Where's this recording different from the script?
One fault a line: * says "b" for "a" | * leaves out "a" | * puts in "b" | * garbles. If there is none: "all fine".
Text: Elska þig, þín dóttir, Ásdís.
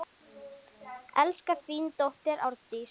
* leaves out "þig"